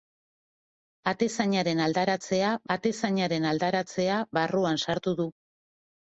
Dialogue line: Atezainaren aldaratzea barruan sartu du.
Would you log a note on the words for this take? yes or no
yes